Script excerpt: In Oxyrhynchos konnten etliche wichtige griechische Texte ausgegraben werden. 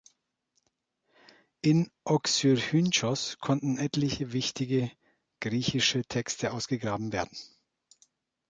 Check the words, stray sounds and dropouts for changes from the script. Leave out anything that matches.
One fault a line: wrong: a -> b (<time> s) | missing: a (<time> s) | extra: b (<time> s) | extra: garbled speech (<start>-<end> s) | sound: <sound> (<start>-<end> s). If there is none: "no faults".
no faults